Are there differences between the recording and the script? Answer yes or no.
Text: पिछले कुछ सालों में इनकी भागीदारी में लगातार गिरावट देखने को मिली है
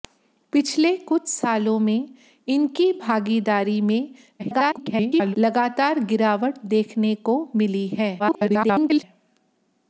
yes